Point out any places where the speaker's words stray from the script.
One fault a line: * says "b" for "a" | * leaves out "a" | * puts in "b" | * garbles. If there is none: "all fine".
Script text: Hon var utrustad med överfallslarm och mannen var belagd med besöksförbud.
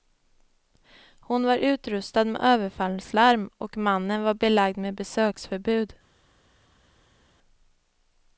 all fine